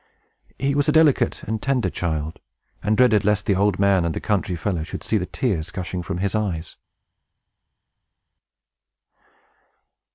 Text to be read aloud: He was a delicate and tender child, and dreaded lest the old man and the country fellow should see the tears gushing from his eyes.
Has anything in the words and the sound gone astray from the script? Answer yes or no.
no